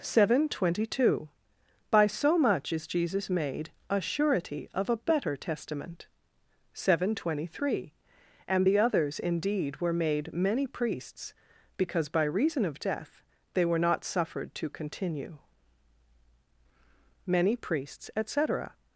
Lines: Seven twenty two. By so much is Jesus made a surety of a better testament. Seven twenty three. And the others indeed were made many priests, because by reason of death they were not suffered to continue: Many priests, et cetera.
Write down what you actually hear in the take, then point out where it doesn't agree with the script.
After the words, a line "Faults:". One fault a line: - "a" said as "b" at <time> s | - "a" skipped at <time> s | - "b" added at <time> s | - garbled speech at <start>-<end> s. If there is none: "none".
Seven twenty two. By so much is Jesus made a surety of a better testament. Seven twenty three. And the others indeed were made many priests, because by reason of death they were not suffered to continue: Many priests, et cetera.
Faults:
none